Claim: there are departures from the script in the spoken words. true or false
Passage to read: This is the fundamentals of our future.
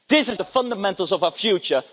false